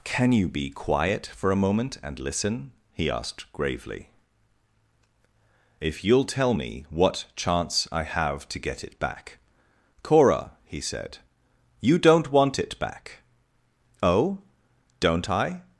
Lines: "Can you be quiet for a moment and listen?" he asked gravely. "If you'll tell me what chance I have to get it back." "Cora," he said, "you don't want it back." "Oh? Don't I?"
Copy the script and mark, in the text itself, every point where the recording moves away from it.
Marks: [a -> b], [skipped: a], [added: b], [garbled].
"Can you be quiet for a moment and listen?" he asked gravely. "If you'll tell me what chance I have to get it back." "Cora," he said, "you don't want it back." "Oh? Don't I?"